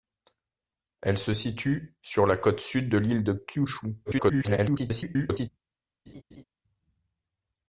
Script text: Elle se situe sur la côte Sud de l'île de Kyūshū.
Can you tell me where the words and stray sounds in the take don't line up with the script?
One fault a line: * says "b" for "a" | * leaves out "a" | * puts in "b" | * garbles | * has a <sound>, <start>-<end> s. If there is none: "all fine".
* garbles
* has a laugh, 6.1-6.4 s